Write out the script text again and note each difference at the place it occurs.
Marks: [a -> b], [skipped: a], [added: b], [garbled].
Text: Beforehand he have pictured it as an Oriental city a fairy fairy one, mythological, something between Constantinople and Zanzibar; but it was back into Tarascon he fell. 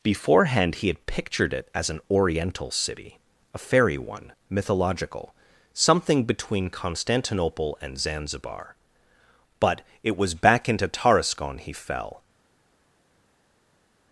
Beforehand he [have -> had] pictured it as an Oriental city a fairy [skipped: fairy] one, mythological, something between Constantinople and Zanzibar; but it was back into Tarascon he fell.